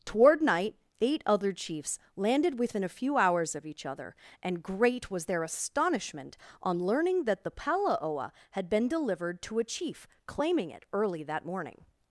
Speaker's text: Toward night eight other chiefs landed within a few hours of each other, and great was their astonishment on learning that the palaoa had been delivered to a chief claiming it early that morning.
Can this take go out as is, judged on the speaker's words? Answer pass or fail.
pass